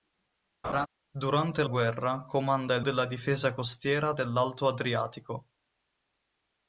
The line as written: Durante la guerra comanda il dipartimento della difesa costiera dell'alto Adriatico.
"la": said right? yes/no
no